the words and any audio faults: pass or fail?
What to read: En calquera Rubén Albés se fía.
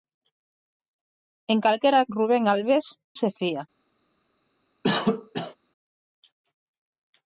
fail